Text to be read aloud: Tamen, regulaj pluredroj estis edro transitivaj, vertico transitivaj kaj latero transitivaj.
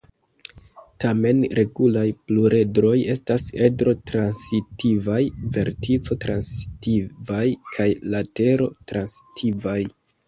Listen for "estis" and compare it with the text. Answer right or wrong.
wrong